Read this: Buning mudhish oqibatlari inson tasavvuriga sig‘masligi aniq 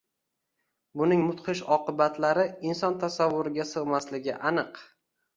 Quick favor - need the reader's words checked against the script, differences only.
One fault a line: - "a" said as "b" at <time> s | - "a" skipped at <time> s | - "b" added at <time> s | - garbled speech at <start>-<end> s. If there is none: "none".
none